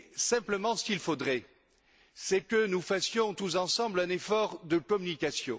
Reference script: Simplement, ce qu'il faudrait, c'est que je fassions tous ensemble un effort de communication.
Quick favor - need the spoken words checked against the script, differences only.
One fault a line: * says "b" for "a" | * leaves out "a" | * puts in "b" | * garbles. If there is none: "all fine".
* says "nous" for "je"